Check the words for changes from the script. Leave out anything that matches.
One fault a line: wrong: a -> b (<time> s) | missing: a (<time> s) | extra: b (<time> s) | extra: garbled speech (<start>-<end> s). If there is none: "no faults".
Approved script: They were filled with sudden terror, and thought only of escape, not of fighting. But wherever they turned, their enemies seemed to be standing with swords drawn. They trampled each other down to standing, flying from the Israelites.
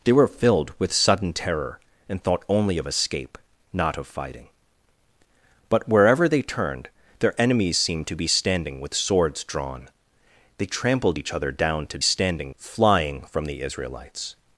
no faults